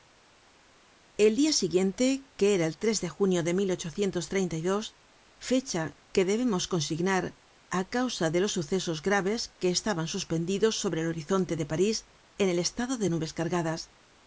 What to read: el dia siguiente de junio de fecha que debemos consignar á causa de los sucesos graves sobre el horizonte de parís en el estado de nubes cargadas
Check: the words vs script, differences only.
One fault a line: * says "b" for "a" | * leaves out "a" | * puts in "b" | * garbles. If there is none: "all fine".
* puts in "que era el"
* puts in "que estaban suspendidos"